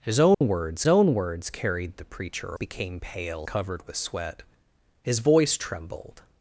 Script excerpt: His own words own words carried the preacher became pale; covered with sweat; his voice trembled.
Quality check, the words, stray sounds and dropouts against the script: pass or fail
fail